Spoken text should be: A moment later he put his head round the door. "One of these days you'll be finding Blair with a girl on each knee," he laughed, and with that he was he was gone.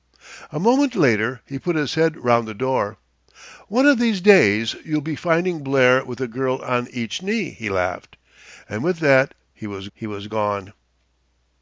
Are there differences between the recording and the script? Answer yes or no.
no